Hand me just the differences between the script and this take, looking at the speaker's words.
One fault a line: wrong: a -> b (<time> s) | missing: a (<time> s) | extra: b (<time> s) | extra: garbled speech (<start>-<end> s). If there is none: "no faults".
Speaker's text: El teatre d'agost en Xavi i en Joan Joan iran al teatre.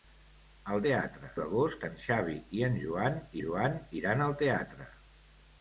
no faults